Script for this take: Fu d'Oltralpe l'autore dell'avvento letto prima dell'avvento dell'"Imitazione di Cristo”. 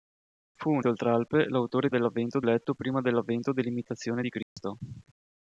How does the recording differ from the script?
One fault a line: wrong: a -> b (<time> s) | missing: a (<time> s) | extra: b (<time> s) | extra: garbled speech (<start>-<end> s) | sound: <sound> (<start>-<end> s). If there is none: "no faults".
sound: dropout (4.4-4.6 s)